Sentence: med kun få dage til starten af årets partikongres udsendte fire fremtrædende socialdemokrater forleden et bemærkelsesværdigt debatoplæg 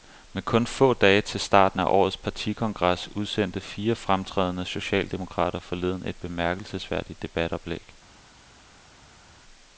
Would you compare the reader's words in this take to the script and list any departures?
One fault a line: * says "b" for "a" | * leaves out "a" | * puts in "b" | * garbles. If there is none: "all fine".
all fine